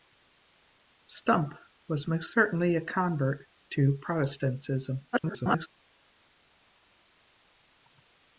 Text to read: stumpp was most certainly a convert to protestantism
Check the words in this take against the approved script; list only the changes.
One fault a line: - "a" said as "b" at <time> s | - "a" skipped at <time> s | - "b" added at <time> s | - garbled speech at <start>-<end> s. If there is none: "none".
- garbled speech at 5.1-5.7 s